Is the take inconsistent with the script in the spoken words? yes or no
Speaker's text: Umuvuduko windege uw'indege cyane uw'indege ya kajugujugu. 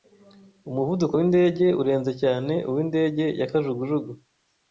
yes